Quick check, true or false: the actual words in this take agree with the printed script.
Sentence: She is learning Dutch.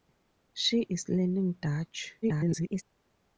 false